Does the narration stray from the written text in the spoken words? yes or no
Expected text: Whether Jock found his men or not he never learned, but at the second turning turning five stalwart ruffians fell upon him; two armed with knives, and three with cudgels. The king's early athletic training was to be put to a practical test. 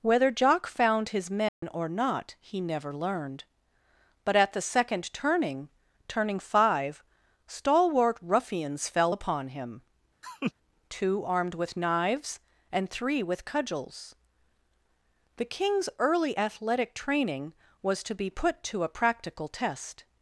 no